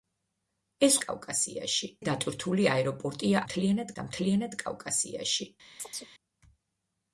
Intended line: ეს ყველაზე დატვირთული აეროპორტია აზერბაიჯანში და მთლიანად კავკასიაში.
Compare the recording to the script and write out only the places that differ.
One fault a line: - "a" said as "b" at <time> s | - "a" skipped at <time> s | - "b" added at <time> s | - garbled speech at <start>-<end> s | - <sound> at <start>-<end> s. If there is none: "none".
- "ყველაზე" said as "კავკასიაში" at 1.0 s
- "აზერბაიჯანში" said as "მთლიანად" at 3.5 s
- chirp at 5.8-6.1 s